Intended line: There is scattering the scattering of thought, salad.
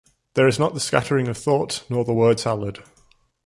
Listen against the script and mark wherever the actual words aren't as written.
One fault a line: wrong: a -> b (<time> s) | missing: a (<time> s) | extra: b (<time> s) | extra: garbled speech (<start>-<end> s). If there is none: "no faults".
wrong: scattering -> not (0.6 s)
extra: nor the word (1.9 s)